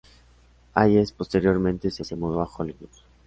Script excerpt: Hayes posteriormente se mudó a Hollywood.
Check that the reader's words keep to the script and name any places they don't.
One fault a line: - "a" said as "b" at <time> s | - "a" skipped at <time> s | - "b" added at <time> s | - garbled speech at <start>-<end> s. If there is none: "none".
- "se" added at 2.0 s